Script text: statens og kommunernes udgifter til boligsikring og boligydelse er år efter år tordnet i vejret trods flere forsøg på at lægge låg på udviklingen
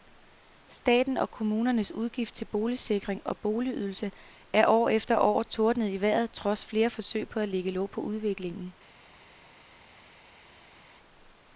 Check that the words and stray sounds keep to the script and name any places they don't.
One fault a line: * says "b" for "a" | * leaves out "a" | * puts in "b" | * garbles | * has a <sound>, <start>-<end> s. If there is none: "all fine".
all fine